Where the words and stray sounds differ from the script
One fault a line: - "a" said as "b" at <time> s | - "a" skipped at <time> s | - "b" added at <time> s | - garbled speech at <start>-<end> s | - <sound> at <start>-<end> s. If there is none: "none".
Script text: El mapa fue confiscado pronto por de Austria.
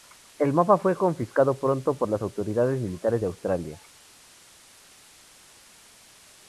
- "las autoridades militares" added at 2.1 s